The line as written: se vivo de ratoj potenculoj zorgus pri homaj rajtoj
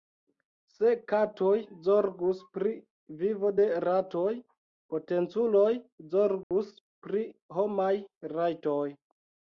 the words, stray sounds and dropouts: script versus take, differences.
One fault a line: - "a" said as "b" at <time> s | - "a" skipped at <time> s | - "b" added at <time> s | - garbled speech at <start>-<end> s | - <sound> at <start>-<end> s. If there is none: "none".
- "katoj zorgus pri" added at 1.1 s
- dropout at 6.4-6.5 s